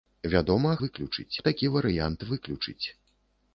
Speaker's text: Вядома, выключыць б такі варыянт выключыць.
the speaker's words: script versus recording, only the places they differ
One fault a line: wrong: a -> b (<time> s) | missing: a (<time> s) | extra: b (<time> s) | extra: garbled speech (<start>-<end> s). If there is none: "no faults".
no faults